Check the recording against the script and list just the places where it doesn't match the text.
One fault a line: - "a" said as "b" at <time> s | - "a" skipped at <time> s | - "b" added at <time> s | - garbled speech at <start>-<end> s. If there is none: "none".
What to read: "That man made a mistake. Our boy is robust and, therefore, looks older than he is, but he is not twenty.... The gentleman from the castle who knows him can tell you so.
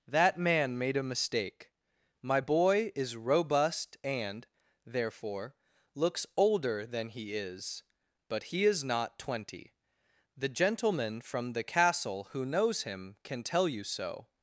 - "Our" said as "My" at 2.2 s